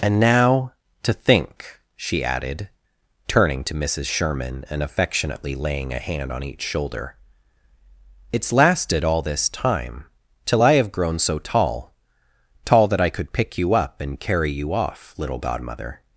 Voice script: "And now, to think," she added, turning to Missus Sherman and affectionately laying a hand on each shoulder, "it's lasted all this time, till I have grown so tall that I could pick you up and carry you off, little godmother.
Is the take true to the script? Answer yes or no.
no